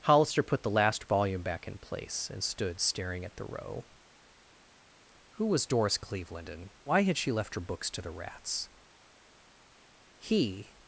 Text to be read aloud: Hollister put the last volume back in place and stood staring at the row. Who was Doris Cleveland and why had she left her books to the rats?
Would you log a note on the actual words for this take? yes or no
yes